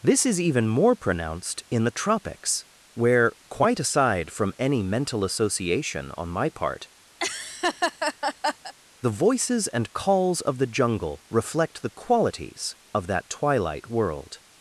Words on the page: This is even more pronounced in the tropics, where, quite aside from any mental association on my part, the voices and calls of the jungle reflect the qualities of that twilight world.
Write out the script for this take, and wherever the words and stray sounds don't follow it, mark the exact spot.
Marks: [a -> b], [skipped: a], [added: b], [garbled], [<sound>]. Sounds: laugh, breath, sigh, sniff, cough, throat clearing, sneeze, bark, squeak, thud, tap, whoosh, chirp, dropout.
This is even more pronounced in the tropics, where, quite aside from any mental association on my part, [laugh] the voices and calls of the jungle reflect the qualities of that twilight world.